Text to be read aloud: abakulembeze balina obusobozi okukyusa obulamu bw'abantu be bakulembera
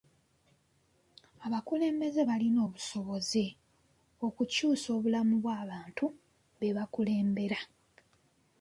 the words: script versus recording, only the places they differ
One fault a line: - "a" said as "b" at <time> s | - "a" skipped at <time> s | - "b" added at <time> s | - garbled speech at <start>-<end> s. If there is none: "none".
none